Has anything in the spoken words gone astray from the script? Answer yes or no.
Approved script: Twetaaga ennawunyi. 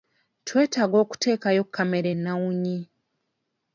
yes